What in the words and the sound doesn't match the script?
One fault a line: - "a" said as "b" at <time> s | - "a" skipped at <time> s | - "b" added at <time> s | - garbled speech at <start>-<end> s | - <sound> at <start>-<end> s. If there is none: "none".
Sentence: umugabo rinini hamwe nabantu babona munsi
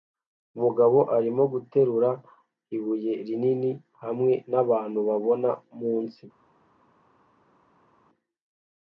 - "arimo guterura ibuye" added at 1.2 s